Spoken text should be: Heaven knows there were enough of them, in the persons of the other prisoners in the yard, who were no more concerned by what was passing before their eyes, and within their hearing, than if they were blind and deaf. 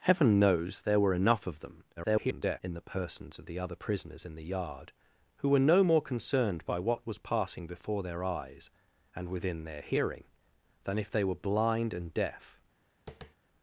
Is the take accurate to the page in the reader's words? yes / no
no